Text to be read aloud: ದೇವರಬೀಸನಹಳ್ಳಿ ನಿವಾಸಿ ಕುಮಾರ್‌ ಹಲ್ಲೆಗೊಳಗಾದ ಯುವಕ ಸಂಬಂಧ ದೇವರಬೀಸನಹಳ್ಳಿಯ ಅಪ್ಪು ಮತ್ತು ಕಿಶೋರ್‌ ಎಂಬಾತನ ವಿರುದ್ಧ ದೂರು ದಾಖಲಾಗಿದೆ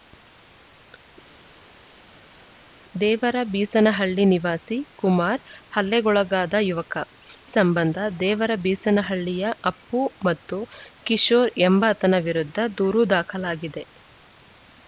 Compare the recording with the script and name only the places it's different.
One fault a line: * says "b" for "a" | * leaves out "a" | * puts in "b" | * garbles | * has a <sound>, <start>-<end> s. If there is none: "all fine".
all fine